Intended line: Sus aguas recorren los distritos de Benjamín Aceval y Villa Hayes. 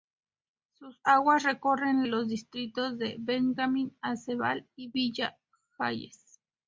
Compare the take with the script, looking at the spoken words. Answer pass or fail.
pass